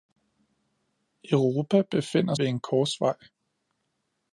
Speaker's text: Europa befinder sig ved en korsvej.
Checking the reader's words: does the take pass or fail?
fail